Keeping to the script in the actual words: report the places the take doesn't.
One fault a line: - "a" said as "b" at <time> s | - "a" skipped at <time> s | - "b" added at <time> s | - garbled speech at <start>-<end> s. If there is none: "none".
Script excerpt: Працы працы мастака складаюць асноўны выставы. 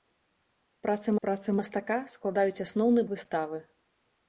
none